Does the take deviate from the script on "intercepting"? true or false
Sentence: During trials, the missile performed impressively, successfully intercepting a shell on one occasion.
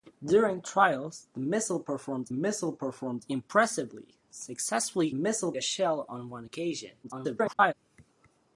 true